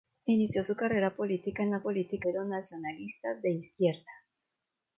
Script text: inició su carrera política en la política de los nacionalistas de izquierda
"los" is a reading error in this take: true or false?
false